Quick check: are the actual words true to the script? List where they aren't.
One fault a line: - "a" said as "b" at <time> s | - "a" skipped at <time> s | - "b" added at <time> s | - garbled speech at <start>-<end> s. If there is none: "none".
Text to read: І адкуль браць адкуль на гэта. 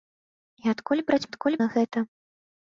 none